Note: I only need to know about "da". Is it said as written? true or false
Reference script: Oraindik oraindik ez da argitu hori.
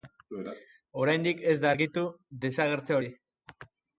true